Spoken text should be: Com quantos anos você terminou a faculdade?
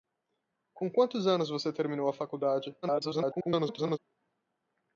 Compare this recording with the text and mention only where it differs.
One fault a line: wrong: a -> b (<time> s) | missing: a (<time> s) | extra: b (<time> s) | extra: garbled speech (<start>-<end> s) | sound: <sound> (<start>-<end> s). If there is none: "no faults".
extra: garbled speech (2.8-4.0 s)